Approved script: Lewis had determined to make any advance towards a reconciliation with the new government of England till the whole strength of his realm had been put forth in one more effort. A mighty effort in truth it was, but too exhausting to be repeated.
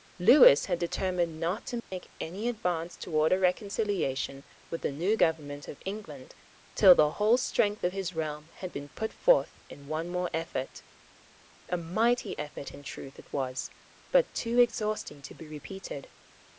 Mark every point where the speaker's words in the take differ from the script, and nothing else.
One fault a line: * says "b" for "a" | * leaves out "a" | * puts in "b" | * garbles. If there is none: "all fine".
* puts in "not"